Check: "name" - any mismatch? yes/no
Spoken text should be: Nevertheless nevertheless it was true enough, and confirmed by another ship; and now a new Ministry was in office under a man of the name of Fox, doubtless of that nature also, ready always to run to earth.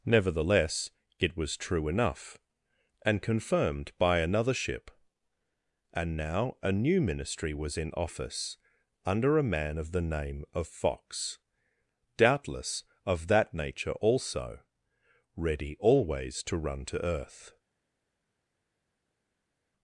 no